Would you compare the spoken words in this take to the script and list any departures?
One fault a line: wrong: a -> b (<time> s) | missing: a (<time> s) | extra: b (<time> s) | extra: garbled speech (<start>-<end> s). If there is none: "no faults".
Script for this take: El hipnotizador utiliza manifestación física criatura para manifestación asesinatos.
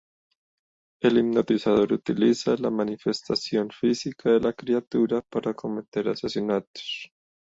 extra: la (2.6 s)
extra: de la (4.3 s)
wrong: manifestación -> cometer (5.5 s)